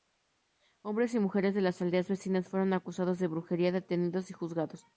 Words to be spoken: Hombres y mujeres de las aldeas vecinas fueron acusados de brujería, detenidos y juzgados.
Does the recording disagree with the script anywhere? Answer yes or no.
no